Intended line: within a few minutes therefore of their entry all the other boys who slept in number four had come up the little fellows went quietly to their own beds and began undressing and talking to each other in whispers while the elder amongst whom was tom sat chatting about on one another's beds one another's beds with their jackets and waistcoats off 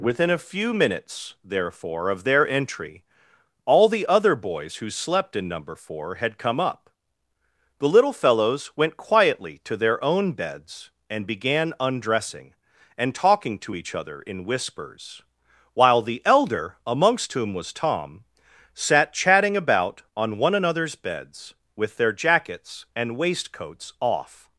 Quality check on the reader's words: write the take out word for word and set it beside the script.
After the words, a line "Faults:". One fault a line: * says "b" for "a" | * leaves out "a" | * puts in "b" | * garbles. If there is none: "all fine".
within a few minutes therefore of their entry all the other boys who slept in number four had come up the little fellows went quietly to their own beds and began undressing and talking to each other in whispers while the elder amongst whom was tom sat chatting about on one another's beds with their jackets and waistcoats off
Faults:
* leaves out "one another's beds"